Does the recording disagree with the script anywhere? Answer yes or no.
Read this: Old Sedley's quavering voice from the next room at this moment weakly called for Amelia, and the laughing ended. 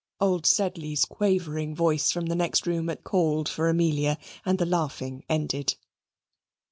yes